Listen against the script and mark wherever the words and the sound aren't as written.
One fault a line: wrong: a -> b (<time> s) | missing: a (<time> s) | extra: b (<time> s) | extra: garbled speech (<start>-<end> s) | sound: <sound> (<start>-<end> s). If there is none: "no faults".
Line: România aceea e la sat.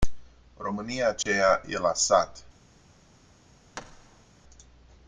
sound: dropout (1.2-1.3 s)
sound: thud (3.7-4.3 s)